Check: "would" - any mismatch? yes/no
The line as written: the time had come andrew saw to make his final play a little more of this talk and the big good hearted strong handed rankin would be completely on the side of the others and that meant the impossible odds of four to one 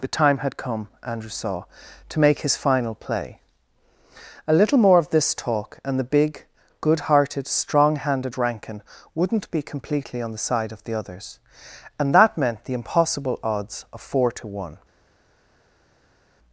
yes